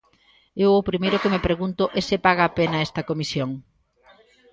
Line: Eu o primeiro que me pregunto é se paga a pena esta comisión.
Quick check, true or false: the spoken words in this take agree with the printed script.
true